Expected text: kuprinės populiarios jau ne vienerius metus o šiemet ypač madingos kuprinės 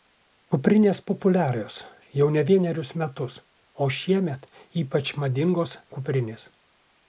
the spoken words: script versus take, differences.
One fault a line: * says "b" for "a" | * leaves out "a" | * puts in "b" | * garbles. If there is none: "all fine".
all fine